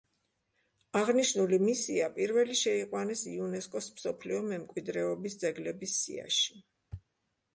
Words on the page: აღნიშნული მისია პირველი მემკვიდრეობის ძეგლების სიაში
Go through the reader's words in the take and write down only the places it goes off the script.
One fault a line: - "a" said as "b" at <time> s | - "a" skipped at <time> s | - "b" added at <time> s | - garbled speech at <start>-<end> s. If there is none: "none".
- "შეიყვანეს იუნესკოს მსოფლიო" added at 2.6 s